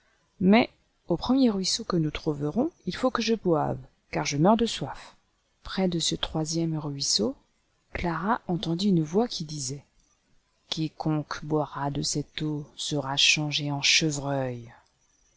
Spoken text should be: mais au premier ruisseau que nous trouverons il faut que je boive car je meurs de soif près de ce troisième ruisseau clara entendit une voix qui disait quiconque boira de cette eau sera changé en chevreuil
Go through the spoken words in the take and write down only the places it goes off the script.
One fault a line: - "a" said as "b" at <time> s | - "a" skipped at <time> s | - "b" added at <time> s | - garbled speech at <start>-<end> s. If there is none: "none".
none